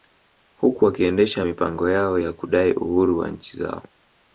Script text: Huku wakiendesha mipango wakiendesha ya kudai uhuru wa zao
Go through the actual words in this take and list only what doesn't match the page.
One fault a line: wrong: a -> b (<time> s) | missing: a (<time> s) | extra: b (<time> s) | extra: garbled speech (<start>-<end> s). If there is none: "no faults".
wrong: wakiendesha -> yao (1.9 s)
extra: nchi (3.3 s)